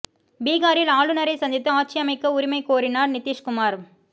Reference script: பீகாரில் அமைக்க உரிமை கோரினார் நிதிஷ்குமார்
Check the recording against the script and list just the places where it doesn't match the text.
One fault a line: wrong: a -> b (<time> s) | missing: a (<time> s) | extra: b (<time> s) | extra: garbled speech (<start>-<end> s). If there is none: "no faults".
extra: ஆளுநரை சந்தித்து ஆட்சி (0.9 s)